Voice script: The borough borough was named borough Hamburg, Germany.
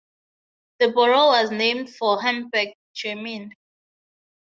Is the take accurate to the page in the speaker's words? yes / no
no